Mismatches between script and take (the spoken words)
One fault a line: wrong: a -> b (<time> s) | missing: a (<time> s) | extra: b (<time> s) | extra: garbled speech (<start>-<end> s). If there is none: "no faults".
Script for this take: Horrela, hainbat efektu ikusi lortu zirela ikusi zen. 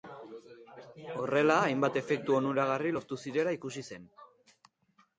wrong: ikusi -> onuragarri (2.4 s)